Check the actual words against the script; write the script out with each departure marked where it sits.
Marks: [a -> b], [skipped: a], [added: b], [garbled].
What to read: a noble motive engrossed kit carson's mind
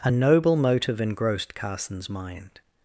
a noble motive engrossed [skipped: kit] carson's mind